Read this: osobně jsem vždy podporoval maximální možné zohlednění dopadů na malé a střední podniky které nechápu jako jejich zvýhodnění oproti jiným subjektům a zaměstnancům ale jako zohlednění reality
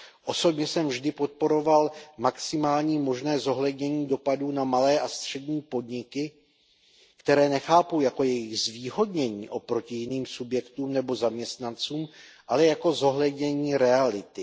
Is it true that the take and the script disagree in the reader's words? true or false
true